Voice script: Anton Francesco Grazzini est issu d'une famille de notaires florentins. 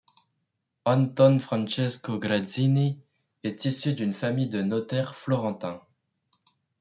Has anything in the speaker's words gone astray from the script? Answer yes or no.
no